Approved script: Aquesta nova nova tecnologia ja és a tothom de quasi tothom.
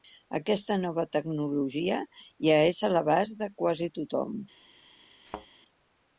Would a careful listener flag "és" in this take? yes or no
no